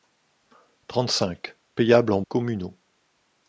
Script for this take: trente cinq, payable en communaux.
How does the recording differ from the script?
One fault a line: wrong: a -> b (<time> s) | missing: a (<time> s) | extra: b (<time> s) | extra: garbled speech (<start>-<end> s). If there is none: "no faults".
no faults